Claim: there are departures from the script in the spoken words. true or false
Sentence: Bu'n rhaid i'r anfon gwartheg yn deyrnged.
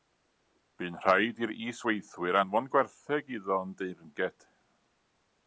true